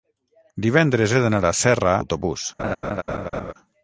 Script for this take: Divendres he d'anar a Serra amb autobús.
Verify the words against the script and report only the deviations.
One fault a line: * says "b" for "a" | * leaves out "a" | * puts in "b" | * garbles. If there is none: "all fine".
* leaves out "amb"